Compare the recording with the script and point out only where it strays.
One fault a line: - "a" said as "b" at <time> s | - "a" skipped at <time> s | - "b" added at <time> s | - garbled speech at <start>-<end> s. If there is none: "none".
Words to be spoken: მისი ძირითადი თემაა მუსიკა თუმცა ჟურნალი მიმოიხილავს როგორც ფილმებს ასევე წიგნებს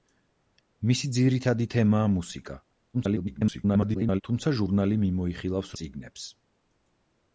- garbled speech at 2.9-4.2 s
- "როგორც ფილმებს ასევე" skipped at 5.7 s